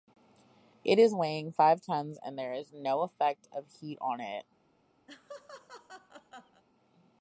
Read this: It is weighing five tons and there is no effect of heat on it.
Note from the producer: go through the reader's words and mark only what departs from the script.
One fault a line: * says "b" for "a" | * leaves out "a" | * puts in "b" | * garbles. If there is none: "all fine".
all fine